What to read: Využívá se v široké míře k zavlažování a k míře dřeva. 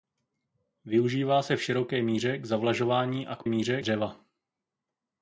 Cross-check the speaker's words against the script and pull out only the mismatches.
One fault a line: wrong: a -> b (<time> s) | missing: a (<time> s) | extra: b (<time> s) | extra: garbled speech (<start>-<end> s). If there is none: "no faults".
no faults